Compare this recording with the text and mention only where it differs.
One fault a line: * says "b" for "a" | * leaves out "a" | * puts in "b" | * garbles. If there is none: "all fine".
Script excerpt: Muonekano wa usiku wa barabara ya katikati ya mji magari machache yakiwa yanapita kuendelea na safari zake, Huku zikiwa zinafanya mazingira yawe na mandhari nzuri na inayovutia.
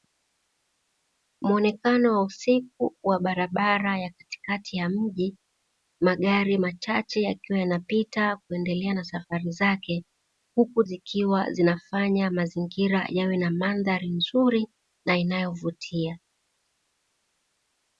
all fine